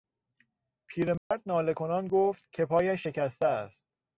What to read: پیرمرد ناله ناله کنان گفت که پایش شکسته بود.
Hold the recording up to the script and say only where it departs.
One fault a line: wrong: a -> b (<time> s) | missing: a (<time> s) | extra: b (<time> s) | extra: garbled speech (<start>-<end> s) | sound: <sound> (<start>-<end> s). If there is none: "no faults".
sound: dropout (1.2-1.3 s)
missing: ناله (1.7 s)
wrong: بود -> است (3.5 s)